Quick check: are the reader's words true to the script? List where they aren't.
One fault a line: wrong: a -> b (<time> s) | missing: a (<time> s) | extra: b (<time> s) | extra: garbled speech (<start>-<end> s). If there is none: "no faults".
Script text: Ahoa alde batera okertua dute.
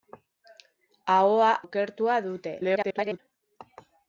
missing: alde batera (1.5 s)
extra: garbled speech (2.6-3.2 s)